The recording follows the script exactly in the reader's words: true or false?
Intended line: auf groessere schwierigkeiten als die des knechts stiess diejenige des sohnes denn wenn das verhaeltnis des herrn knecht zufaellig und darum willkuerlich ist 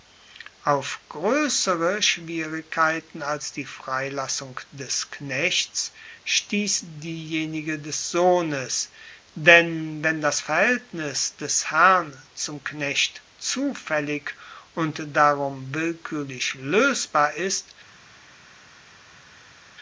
false